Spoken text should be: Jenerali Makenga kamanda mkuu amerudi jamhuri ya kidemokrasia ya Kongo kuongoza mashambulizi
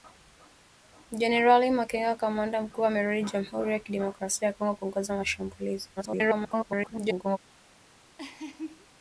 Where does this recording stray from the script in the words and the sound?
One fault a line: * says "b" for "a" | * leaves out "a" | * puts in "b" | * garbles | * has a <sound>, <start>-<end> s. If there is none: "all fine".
* garbles
* has a laugh, 8.2-8.9 s